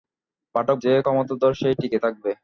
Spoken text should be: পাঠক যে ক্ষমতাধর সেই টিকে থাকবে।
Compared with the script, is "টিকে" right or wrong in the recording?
right